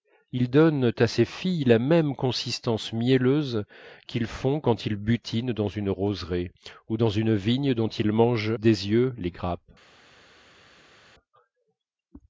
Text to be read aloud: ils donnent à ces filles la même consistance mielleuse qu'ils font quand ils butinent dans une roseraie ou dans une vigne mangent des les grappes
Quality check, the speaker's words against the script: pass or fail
fail